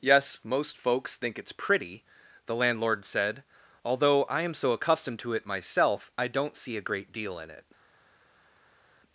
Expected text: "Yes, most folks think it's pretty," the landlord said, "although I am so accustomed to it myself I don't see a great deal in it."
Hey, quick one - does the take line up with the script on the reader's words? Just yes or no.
yes